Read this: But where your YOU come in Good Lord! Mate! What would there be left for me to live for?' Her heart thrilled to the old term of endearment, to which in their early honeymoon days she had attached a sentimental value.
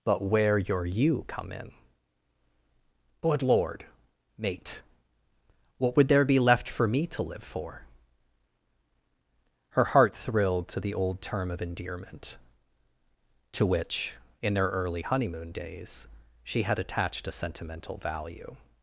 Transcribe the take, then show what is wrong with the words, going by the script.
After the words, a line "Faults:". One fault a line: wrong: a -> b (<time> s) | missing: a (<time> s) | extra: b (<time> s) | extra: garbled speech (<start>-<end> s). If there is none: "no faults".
But where your YOU come in Good Lord! Mate! What would there be left for me to live for?' Her heart thrilled to the old term of endearment, to which in their early honeymoon days she had attached a sentimental value.
Faults:
no faults